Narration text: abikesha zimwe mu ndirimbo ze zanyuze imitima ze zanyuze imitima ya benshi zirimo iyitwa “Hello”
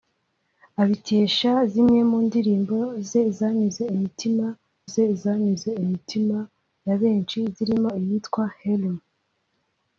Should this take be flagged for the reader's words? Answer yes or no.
no